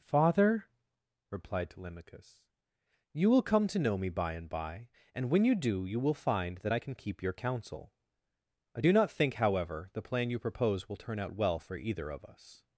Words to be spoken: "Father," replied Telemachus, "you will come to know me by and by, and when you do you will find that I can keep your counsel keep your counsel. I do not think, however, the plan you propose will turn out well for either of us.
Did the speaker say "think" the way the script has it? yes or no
yes